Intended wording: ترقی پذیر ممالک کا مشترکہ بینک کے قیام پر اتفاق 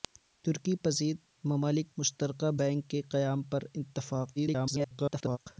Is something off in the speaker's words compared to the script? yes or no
yes